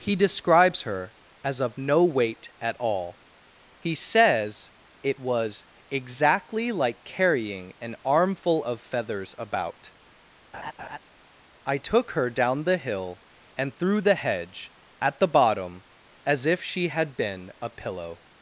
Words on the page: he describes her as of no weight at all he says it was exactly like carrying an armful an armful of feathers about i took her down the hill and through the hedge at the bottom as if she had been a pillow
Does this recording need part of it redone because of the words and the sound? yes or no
yes